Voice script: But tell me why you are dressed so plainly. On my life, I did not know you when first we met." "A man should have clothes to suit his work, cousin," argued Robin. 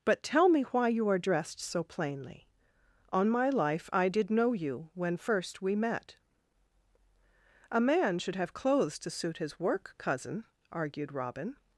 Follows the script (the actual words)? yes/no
no